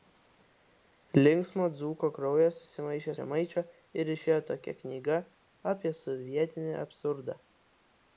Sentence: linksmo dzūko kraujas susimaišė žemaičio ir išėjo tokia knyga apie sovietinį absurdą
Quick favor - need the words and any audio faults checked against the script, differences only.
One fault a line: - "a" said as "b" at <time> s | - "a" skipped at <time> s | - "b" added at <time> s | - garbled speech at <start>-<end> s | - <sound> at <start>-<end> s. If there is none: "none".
none